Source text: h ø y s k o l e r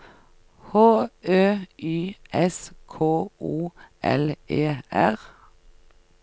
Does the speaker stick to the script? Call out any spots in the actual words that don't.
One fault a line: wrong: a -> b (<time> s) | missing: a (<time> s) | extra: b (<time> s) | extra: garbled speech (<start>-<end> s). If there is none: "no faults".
no faults